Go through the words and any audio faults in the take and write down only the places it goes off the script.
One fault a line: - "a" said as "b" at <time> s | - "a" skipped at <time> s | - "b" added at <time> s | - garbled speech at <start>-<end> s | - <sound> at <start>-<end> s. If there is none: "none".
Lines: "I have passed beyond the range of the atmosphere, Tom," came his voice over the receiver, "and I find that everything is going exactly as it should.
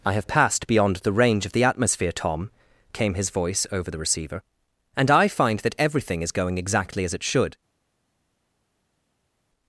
none